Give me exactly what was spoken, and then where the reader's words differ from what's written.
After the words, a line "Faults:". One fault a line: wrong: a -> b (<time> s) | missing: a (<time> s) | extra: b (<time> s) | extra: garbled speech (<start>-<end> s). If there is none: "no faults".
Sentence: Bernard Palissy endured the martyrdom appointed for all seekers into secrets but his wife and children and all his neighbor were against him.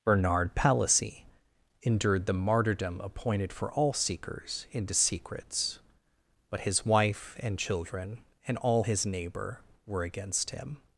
Bernard Palissy endured the martyrdom appointed for all seekers into secrets but his wife and children and all his neighbor were against him.
Faults:
no faults